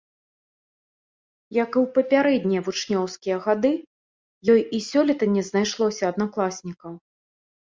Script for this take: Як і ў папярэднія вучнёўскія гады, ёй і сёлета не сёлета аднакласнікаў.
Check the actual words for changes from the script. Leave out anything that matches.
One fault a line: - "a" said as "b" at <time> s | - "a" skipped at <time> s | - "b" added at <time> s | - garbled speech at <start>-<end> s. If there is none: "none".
- "сёлета" said as "знайшлося" at 5.5 s